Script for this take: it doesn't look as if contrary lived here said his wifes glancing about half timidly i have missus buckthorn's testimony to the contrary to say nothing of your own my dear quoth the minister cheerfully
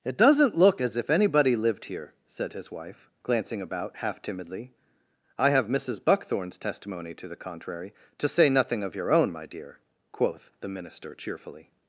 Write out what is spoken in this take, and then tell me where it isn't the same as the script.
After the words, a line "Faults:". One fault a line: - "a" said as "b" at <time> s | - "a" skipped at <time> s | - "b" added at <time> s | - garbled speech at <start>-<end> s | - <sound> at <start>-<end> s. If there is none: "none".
it doesn't look as if anybody lived here said his wife glancing about half timidly i have missus buckthorn's testimony to the contrary to say nothing of your own my dear quoth the minister cheerfully
Faults:
- "contrary" said as "anybody" at 1.1 s
- "wifes" said as "wife" at 2.7 s